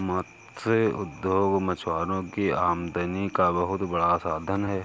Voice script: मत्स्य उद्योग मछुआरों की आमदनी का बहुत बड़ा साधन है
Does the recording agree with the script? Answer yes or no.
yes